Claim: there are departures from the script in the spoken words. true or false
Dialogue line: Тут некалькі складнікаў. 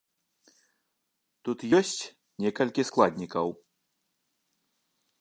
true